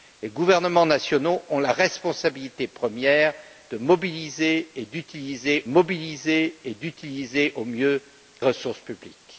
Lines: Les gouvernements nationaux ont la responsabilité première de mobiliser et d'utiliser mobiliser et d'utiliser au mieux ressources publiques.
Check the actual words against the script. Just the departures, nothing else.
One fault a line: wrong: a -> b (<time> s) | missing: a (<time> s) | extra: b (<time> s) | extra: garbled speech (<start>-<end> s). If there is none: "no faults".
no faults